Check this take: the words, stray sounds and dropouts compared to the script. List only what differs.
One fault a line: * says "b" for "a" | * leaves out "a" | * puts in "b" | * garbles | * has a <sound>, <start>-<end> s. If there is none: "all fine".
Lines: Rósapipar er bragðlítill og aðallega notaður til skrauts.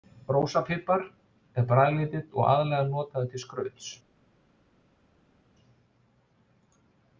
all fine